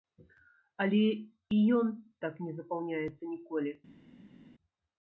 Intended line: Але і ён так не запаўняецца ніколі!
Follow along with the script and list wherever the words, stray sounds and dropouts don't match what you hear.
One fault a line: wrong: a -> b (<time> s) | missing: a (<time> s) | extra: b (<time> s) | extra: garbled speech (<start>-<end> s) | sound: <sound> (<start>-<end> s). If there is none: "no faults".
no faults